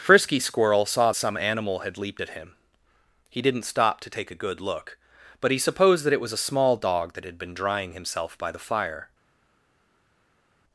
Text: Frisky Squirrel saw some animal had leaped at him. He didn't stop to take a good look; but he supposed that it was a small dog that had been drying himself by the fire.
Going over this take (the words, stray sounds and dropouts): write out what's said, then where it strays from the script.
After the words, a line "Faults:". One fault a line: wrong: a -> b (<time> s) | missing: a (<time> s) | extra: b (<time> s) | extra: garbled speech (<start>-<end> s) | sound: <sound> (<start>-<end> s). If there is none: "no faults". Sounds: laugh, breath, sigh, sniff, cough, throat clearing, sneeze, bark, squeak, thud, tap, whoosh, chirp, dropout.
Frisky Squirrel saw some animal had leaped at him. He didn't stop to take a good look; but he supposed that it was a small dog that had been drying himself by the fire.
Faults:
no faults